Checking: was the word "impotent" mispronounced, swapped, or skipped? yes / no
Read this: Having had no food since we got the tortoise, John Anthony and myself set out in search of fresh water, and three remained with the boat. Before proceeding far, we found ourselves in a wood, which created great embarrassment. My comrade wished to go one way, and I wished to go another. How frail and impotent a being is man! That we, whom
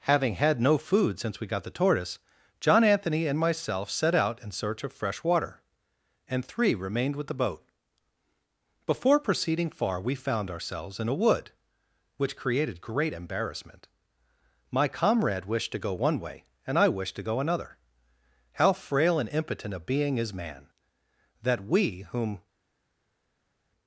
no